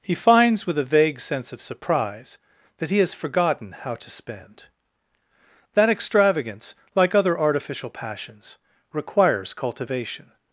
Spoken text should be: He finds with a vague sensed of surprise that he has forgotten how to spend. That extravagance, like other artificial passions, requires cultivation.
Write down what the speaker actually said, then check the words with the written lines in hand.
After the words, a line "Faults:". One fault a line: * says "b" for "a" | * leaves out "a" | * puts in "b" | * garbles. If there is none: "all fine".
He finds with a vague sense of surprise that he has forgotten how to spend. That extravagance, like other artificial passions, requires cultivation.
Faults:
* says "sense" for "sensed"